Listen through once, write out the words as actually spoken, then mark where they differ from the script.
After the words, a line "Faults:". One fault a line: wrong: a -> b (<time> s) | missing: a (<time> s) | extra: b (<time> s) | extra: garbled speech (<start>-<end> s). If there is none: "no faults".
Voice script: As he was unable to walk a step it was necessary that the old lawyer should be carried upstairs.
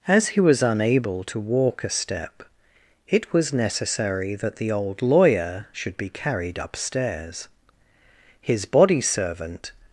As he was unable to walk a step it was necessary that the old lawyer should be carried upstairs. His body servant
Faults:
extra: His body servant (8.4 s)